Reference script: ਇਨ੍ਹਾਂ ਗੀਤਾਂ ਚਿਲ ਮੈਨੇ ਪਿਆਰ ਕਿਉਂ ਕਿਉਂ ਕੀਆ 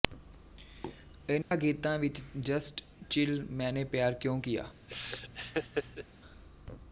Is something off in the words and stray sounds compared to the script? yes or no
yes